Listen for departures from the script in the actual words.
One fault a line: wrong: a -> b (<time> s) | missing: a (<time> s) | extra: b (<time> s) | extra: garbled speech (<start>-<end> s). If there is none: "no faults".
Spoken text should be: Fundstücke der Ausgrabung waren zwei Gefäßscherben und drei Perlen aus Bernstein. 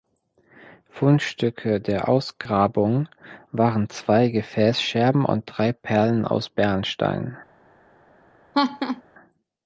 no faults